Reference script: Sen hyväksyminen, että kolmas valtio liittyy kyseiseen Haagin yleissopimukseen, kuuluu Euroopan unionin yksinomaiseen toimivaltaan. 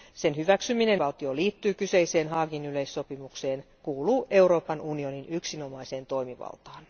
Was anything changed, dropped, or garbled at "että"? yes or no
yes